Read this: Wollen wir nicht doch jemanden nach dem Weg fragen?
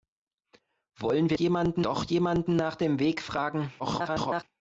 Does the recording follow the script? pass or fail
fail